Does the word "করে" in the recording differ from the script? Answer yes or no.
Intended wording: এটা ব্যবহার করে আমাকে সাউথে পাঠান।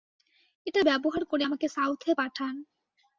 no